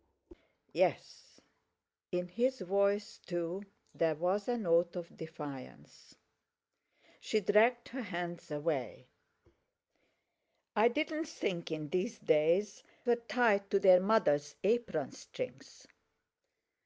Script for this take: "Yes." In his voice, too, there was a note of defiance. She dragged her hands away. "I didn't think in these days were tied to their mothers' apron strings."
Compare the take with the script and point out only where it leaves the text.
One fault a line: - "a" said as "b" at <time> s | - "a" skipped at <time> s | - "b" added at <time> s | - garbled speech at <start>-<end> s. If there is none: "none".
none